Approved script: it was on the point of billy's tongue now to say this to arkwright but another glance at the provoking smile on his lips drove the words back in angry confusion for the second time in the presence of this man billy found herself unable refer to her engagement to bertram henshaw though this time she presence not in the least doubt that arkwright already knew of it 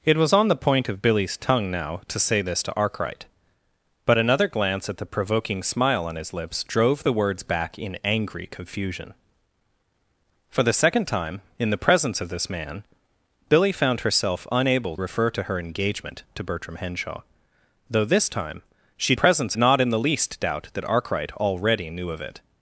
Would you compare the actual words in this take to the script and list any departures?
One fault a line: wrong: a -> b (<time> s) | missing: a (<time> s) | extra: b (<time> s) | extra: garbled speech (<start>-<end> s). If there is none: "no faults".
no faults